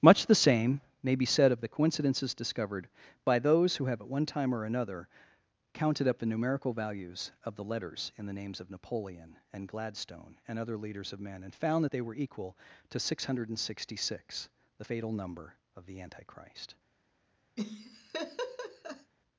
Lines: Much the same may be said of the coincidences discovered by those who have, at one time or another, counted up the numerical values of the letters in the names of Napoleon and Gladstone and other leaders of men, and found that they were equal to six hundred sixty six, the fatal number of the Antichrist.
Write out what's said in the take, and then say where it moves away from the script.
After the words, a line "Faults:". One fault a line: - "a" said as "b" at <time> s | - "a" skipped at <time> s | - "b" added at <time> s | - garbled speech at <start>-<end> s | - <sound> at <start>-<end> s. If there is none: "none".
Much the same may be said of the coincidences discovered by those who have, at one time or another, counted up the numerical values of the letters in the names of Napoleon and Gladstone and other leaders of men, and found that they were equal to six hundred sixty six, the fatal number of the Antichrist.
Faults:
- laugh at 17.6-19.1 s